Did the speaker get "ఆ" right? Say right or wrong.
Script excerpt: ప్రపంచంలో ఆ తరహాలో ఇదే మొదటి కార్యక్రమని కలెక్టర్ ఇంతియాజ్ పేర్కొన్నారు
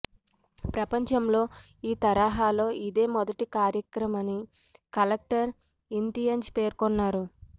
wrong